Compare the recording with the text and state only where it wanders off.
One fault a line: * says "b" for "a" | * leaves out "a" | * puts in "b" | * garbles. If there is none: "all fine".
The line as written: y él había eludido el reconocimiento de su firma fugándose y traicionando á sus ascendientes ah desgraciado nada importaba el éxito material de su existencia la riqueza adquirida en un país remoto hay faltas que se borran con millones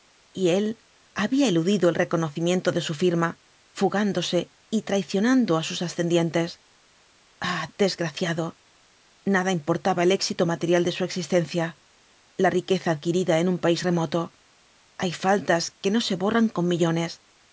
* puts in "no"